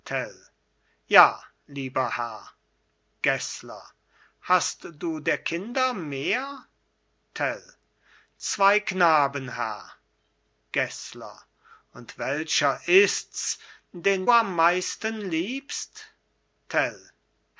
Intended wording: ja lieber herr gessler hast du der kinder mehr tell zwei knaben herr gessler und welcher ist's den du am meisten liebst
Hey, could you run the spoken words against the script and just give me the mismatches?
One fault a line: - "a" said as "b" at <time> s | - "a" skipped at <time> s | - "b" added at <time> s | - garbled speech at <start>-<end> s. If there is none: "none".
- "du" skipped at 14.2 s